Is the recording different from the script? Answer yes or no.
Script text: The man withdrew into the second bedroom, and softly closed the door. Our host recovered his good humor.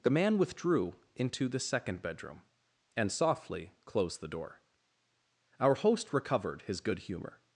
no